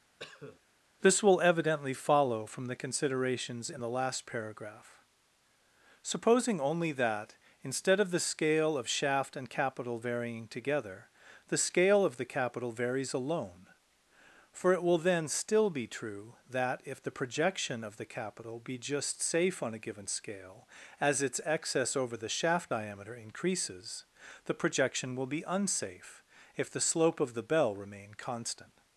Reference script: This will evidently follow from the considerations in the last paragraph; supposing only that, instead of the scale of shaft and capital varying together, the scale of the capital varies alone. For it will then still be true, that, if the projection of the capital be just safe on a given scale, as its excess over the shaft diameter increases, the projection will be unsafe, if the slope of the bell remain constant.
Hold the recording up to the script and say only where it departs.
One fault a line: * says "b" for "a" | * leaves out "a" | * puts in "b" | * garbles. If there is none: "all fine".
all fine